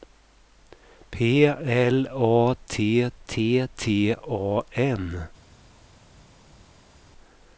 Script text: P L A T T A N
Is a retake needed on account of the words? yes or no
yes